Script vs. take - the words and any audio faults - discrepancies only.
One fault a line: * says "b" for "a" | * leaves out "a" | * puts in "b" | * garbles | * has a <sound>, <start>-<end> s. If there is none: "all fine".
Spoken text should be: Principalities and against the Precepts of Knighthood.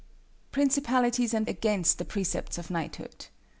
all fine